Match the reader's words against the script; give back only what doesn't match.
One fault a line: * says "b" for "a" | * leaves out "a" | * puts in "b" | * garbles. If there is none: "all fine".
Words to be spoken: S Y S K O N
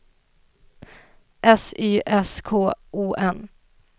all fine